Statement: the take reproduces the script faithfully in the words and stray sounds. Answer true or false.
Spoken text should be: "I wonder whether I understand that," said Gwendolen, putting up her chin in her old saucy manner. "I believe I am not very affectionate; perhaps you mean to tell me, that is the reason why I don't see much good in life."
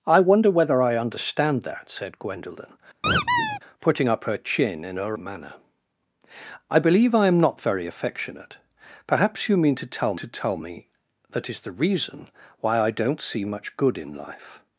false